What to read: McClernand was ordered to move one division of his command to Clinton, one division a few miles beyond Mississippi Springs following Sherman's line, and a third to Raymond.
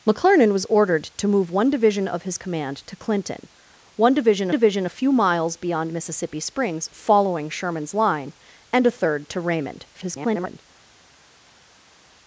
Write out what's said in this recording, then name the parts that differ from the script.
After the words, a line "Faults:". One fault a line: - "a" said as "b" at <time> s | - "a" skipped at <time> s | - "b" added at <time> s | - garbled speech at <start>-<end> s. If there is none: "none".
McClernand was ordered to move one division of his command to Clinton, one division division a few miles beyond Mississippi Springs following Sherman's line, and a third to Raymond. [garbled]
Faults:
- "division" added at 4.5 s
- garbled speech at 9.9-10.6 s